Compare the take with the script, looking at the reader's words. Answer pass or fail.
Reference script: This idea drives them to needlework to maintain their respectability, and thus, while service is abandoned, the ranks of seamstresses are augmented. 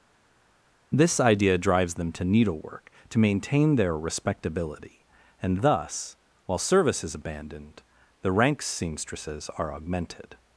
fail